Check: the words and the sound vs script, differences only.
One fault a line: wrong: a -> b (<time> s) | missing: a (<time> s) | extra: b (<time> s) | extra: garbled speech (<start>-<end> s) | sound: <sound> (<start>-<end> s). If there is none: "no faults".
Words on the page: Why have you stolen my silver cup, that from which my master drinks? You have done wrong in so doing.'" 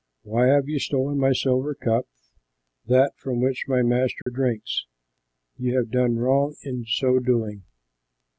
sound: dropout (4.2-4.3 s)